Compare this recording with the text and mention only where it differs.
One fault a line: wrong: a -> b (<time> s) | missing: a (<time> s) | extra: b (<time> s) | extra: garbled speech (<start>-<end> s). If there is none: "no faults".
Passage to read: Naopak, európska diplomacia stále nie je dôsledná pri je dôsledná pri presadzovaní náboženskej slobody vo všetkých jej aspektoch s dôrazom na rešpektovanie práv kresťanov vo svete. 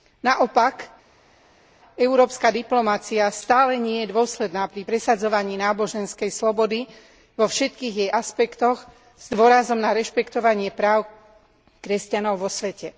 missing: je dôsledná pri (4.9 s)